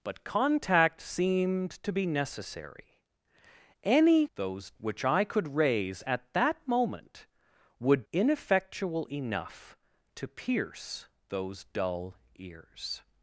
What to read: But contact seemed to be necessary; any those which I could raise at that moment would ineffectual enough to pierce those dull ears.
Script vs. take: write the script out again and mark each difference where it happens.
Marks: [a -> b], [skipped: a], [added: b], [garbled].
But contact seemed to be necessary; any those which I could raise at that moment would ineffectual enough to pierce those dull ears.